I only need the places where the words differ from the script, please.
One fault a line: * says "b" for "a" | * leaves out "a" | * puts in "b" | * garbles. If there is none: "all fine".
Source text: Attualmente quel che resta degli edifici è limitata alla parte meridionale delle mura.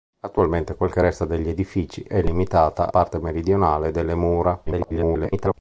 * leaves out "alla"
* garbles